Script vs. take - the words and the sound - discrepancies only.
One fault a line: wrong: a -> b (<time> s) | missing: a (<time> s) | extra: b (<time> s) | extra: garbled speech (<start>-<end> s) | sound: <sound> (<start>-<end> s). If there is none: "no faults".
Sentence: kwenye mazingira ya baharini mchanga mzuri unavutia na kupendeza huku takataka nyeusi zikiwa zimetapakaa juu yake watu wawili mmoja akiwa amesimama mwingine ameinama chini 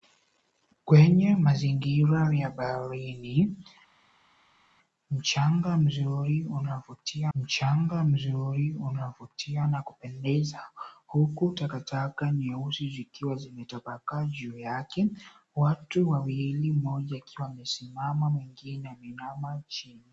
extra: mchanga mzuri unavutia (7.3 s)